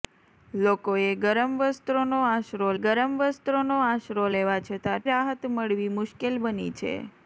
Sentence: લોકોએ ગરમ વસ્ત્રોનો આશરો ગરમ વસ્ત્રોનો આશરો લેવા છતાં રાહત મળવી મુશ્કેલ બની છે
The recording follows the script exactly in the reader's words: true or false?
true